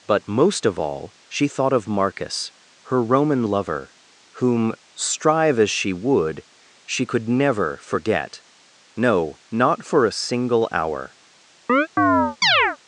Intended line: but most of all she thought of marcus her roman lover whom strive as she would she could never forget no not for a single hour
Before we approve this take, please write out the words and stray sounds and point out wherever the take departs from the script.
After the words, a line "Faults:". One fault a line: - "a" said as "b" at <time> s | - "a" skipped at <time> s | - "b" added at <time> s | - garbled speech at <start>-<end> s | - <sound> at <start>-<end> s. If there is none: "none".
but most of all she thought of marcus her roman lover whom strive as she would she could never forget no not for a single hour
Faults:
- chirp at 11.7-12.8 s